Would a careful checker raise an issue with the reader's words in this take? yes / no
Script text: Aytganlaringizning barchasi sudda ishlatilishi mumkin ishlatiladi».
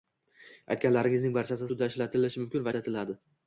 no